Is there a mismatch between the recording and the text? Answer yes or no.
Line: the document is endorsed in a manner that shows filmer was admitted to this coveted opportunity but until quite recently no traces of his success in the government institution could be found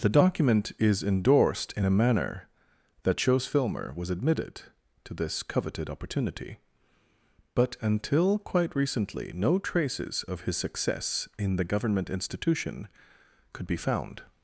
no